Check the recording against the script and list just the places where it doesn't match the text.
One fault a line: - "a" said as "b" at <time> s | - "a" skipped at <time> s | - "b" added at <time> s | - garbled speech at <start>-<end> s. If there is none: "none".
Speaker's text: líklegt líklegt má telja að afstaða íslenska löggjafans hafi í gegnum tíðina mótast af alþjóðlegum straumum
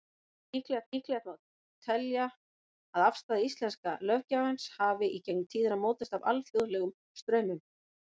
none